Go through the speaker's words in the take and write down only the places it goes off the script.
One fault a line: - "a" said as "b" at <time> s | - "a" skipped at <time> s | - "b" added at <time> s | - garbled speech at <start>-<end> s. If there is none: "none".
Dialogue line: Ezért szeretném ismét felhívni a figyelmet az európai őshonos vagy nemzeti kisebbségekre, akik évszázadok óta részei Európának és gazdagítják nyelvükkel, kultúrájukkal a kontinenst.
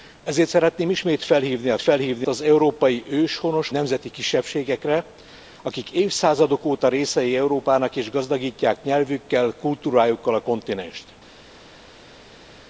- "figyelmet" said as "felhívni" at 1.8 s
- "vagy" skipped at 3.7 s